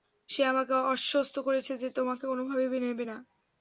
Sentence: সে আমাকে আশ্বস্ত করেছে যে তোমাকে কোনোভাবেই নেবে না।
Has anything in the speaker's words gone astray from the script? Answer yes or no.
no